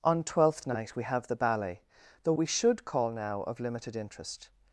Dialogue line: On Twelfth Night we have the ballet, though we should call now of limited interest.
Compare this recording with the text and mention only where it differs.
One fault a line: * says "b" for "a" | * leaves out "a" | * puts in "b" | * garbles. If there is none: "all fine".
all fine